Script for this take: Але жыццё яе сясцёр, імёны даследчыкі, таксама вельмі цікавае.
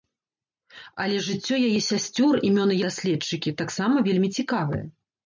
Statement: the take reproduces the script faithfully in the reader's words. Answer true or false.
true